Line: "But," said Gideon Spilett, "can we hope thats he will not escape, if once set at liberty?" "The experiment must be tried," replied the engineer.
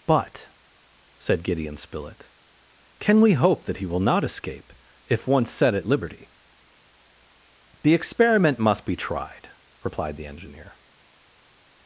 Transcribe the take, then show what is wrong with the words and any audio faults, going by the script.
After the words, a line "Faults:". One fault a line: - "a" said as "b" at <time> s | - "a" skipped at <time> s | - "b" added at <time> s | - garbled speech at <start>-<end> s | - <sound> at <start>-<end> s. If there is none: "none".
"But," said Gideon Spilett, "can we hope that he will not escape, if once set at liberty?" "The experiment must be tried," replied the engineer.
Faults:
- "thats" said as "that" at 3.6 s